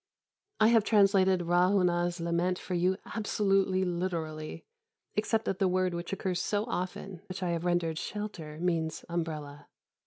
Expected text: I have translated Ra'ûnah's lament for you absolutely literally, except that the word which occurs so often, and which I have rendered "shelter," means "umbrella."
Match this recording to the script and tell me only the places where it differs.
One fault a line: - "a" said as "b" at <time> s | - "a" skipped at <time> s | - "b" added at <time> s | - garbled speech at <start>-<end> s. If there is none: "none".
- "and" skipped at 7.2 s